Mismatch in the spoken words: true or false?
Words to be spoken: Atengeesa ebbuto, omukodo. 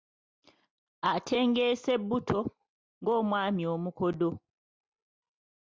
true